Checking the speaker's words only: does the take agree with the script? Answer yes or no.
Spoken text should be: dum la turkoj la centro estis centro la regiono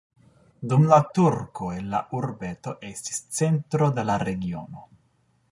no